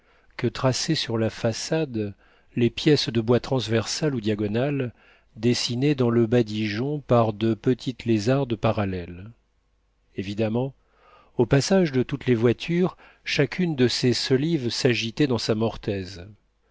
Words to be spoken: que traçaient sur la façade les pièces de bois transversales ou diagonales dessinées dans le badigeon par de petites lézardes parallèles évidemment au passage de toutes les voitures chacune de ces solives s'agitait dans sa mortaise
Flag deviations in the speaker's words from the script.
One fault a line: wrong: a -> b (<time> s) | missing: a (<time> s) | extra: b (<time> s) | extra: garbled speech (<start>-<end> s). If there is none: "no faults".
no faults